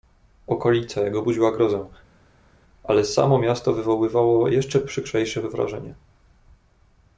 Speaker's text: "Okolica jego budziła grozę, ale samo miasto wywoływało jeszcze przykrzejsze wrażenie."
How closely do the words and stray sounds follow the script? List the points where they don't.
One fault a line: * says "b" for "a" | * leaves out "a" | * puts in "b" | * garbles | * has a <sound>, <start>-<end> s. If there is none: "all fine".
all fine